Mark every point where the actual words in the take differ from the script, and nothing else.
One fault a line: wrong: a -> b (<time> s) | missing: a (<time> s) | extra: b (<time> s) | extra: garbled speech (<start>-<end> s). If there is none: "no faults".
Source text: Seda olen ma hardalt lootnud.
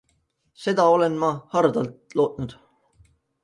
no faults